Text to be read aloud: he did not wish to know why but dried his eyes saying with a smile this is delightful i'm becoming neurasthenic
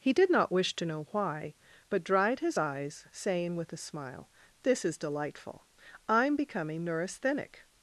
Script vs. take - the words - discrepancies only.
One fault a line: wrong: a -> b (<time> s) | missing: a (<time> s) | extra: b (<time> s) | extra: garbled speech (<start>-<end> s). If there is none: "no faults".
no faults